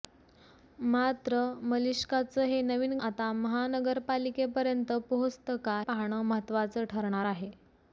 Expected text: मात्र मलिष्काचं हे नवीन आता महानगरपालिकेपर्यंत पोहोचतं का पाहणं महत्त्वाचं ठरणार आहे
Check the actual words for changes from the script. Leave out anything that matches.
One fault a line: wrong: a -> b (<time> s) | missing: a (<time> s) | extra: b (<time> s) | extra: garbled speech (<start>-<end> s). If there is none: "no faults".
no faults